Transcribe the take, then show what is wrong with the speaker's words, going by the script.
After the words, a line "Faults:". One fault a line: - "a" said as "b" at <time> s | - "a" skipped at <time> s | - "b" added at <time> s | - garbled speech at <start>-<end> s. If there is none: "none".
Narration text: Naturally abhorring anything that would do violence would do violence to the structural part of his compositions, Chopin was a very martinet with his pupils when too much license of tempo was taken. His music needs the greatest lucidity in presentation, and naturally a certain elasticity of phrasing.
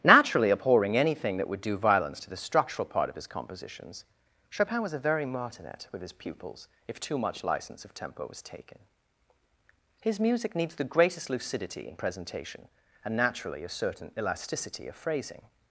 Naturally abhorring anything that would do violence to the structural part of his compositions, Chopin was a very martinet with his pupils if too much license of tempo was taken. His music needs the greatest lucidity in presentation, and naturally a certain elasticity of phrasing.
Faults:
- "would do violence" skipped at 2.2 s
- "when" said as "if" at 6.9 s